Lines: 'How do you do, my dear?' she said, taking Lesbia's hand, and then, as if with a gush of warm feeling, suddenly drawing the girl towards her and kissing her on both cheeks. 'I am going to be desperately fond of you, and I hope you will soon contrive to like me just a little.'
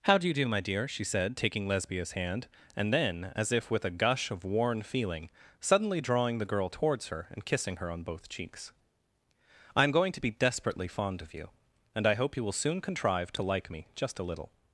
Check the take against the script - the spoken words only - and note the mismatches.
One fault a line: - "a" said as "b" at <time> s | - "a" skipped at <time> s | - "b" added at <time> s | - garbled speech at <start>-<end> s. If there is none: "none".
- "warm" said as "worn" at 4.4 s